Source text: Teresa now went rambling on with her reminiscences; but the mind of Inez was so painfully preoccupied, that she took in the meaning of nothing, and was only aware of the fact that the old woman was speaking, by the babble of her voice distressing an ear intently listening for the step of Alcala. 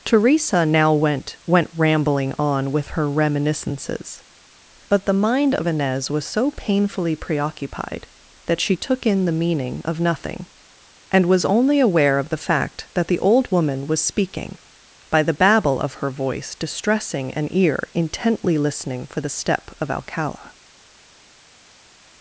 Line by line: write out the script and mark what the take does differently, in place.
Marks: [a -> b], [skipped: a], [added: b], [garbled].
Teresa now went [added: went] rambling on with her reminiscences; but the mind of Inez was so painfully preoccupied, that she took in the meaning of nothing, and was only aware of the fact that the old woman was speaking, by the babble of her voice distressing an ear intently listening for the step of Alcala.